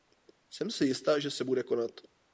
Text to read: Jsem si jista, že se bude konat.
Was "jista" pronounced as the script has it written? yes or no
yes